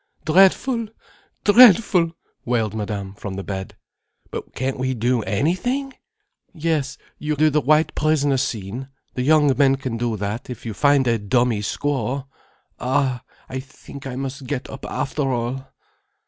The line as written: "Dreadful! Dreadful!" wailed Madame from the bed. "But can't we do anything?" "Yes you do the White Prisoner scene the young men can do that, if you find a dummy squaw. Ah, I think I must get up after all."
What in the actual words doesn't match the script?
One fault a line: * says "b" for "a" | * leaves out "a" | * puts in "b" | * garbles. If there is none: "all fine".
all fine